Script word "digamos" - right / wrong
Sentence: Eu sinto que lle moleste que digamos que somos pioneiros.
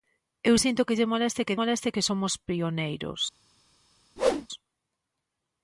wrong